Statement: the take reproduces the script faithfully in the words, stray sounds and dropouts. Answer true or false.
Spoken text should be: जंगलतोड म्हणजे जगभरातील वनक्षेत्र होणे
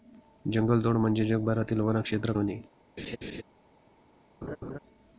false